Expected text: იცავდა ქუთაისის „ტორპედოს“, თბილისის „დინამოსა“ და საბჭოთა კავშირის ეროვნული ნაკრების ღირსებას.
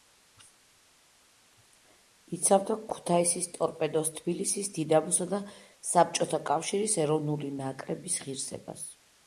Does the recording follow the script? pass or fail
pass